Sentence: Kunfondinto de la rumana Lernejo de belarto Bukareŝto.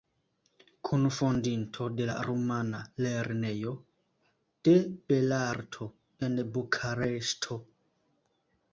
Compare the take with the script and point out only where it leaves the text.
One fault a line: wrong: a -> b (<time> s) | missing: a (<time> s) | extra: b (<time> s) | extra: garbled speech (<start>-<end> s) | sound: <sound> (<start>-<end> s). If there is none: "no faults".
extra: en (6.3 s)